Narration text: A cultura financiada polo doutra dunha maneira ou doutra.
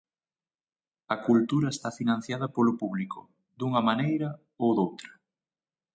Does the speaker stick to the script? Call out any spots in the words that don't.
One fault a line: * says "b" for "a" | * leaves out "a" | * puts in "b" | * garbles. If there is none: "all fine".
* puts in "está"
* says "público" for "doutra"